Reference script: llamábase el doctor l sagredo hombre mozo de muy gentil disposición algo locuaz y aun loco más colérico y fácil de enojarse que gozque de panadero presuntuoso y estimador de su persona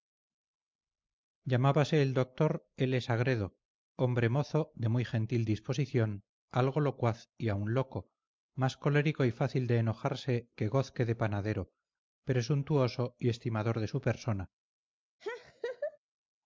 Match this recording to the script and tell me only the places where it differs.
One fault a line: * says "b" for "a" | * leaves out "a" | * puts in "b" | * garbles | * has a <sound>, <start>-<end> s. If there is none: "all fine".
* has a laugh, 15.2-16.0 s